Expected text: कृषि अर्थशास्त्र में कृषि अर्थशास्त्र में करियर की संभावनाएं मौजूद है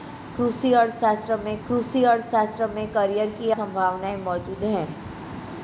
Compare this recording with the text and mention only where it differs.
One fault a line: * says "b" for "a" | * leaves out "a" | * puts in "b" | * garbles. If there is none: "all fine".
all fine